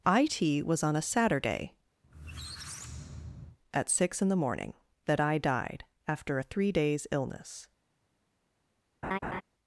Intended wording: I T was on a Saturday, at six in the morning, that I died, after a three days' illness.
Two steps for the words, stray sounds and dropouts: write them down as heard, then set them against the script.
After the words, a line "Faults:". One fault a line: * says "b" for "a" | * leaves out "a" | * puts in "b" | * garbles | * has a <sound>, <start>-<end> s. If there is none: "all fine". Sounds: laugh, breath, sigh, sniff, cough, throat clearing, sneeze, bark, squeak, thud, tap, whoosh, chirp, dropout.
I T was on a Saturday, at six in the morning, that I died, after a three days' illness.
Faults:
* has a squeak, 2.0-3.6 s
* has a laugh, 9.0-9.4 s